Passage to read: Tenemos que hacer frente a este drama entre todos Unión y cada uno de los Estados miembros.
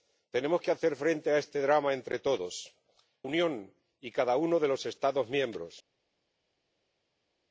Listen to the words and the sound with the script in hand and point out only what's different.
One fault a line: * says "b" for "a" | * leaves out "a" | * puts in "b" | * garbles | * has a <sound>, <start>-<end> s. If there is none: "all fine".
all fine